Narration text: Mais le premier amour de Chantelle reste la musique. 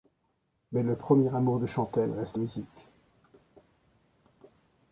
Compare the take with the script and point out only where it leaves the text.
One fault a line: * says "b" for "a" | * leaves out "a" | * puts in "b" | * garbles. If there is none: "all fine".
* leaves out "la"